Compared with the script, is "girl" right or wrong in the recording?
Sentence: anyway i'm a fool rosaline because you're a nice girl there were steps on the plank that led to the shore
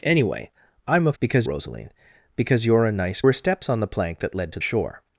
wrong